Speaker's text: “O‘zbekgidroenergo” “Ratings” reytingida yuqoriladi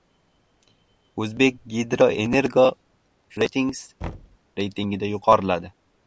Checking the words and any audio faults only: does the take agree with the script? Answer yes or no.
no